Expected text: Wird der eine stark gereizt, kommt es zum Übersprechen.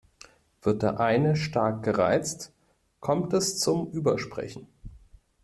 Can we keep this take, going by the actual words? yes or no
yes